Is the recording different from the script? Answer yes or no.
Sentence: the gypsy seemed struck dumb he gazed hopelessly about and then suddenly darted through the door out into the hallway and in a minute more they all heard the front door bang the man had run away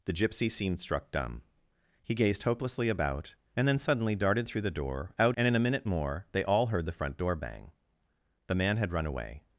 yes